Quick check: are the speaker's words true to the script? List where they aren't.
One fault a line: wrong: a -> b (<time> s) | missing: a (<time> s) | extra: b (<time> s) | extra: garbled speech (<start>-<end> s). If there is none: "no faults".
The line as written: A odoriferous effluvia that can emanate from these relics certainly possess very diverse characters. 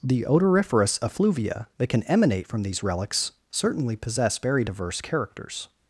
wrong: A -> The (0.0 s)